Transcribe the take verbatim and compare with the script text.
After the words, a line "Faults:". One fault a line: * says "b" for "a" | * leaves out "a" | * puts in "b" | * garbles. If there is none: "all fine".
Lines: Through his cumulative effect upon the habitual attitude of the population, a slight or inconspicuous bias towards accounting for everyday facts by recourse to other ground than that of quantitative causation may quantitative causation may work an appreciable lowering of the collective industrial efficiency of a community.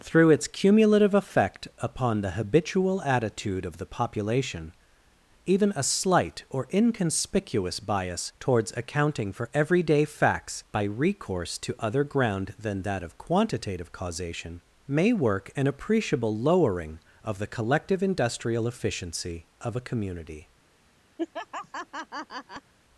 Through its cumulative effect upon the habitual attitude of the population, even a slight or inconspicuous bias towards accounting for everyday facts by recourse to other ground than that of quantitative causation may work an appreciable lowering of the collective industrial efficiency of a community.
Faults:
* says "its" for "his"
* puts in "even"
* leaves out "quantitative causation may"